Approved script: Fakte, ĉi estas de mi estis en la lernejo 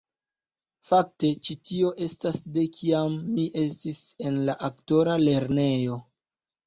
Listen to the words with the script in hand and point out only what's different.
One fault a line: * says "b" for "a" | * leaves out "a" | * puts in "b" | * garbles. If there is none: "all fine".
* puts in "tio"
* puts in "kiam"
* puts in "aktora"